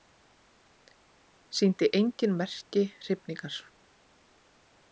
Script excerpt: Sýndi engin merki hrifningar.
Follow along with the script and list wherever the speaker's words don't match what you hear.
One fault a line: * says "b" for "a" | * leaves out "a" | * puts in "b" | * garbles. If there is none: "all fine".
all fine